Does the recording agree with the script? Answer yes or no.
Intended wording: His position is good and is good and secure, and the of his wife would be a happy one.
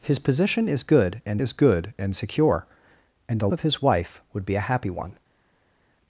yes